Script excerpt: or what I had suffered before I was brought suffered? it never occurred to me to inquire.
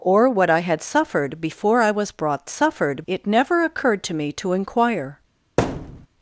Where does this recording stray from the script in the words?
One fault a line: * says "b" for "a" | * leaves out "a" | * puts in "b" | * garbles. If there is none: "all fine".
all fine